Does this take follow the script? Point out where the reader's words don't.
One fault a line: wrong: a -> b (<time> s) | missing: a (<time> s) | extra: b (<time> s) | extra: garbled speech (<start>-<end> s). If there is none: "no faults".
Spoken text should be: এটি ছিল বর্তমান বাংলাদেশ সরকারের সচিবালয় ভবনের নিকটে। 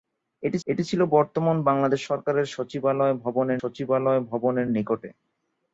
extra: এটি (0.7 s)
extra: সচিবালয় ভবনের (3.6 s)